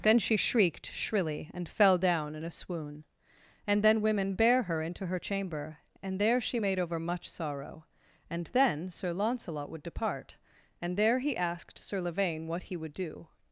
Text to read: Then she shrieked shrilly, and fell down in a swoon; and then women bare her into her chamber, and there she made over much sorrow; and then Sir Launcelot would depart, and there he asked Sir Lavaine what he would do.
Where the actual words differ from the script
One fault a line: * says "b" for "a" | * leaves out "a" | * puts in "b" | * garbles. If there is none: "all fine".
all fine